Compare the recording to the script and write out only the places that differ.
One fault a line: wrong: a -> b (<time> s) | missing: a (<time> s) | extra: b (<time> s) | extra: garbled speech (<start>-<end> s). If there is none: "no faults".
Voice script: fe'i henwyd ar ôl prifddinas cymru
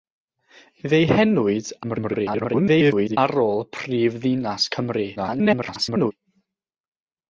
extra: garbled speech (1.8-3.2 s)
extra: garbled speech (5.2-6.1 s)